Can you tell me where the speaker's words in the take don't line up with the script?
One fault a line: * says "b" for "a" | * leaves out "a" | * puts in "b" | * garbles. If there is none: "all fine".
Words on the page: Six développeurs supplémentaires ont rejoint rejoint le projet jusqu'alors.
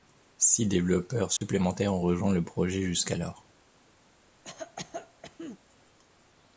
* leaves out "rejoint"